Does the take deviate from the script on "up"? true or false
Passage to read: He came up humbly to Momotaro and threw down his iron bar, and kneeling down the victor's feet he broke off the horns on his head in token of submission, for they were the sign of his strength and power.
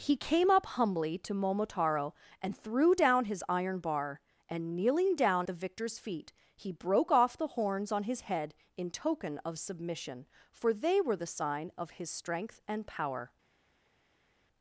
false